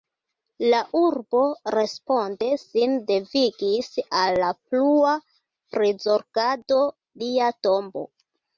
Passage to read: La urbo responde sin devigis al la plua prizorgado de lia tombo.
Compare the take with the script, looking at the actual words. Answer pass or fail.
fail